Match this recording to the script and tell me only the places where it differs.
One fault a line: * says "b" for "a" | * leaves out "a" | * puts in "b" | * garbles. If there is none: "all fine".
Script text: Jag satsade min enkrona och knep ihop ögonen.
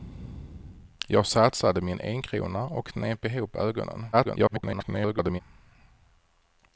* garbles